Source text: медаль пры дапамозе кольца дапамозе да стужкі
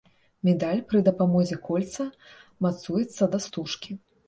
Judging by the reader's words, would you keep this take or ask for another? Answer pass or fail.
fail